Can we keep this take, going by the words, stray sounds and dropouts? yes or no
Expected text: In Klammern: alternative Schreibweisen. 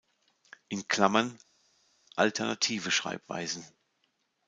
yes